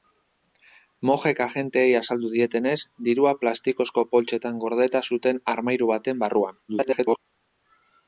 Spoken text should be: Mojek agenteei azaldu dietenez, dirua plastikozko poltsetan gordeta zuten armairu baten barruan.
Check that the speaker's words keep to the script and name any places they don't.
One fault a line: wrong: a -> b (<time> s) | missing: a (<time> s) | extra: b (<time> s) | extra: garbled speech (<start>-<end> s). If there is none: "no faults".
extra: garbled speech (6.7-7.2 s)